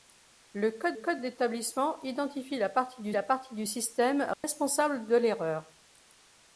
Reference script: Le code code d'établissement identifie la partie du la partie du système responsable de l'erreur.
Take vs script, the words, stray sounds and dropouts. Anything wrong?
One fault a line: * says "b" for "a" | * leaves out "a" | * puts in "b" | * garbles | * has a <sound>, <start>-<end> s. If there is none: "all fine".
* has a dropout, 4.3-4.4 s